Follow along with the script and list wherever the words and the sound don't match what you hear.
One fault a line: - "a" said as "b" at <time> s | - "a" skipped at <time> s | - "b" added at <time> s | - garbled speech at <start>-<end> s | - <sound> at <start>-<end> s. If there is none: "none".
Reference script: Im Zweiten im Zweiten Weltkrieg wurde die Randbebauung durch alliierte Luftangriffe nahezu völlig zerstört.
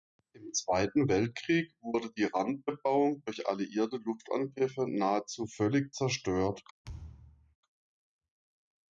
- "im Zweiten" skipped at 1.1 s
- thud at 6.8-7.6 s